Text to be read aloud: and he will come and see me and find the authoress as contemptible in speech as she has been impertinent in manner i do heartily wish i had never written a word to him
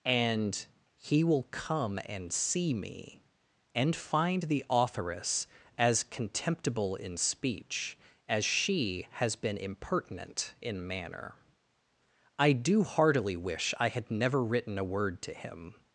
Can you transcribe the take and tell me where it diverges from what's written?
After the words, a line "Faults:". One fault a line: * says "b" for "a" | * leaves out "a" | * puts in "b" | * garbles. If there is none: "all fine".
and he will come and see me and find the authoress as contemptible in speech as she has been impertinent in manner i do heartily wish i had never written a word to him
Faults:
all fine